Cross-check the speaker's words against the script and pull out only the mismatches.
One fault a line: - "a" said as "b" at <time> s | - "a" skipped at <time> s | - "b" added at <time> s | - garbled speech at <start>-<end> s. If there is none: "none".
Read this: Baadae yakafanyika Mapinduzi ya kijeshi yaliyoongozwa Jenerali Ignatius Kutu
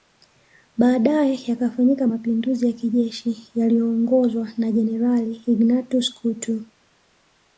- "na" added at 4.6 s